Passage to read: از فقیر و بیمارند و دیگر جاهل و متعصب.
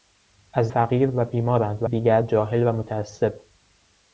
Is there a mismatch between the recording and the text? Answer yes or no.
no